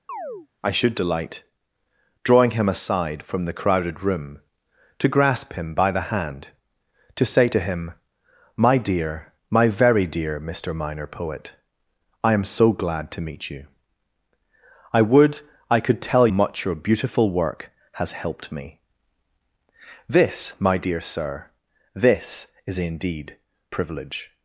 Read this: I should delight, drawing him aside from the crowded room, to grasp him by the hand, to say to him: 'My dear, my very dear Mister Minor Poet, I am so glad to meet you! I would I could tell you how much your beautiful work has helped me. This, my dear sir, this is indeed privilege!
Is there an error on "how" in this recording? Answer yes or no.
yes